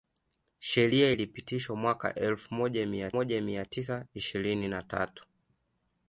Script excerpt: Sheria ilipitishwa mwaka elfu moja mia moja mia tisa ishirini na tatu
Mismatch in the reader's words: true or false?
false